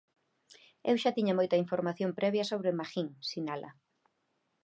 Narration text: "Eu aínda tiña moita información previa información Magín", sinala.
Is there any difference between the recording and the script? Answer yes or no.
yes